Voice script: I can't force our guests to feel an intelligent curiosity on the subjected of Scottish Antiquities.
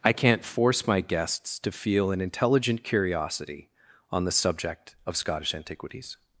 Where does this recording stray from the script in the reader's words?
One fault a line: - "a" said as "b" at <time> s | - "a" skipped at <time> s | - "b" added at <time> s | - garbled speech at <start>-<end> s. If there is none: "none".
- "our" said as "my" at 0.9 s
- "subjected" said as "subject" at 4.3 s